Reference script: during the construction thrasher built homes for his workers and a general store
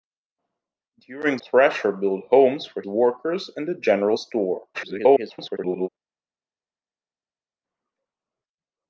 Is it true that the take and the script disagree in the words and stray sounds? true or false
true